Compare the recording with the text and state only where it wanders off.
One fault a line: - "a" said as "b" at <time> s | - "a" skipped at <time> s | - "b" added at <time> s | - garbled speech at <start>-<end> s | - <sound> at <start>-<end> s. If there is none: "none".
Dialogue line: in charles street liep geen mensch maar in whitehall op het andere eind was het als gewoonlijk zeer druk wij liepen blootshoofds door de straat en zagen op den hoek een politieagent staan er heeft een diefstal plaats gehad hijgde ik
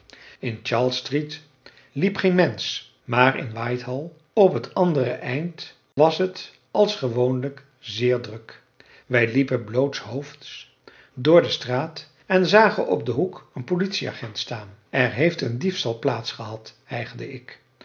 - dropout at 5.9-6.0 s